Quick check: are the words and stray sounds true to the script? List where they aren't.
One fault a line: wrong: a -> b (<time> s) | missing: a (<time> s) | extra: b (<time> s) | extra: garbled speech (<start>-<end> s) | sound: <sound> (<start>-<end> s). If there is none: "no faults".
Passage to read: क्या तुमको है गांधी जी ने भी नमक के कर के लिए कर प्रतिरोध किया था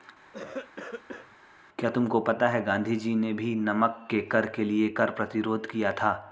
sound: cough (0.3-1.4 s)
extra: पता (2.2 s)